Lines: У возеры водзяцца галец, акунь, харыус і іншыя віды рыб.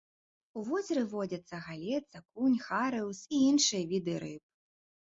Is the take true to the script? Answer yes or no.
yes